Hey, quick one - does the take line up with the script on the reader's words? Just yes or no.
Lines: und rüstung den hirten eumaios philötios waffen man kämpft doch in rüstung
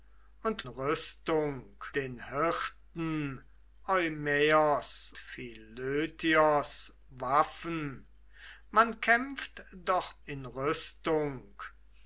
yes